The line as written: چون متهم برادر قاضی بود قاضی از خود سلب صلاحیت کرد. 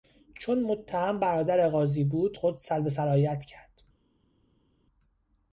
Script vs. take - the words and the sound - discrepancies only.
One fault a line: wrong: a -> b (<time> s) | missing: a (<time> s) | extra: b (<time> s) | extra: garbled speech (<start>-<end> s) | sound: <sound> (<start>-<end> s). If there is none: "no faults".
missing: قاضی از (2.4 s)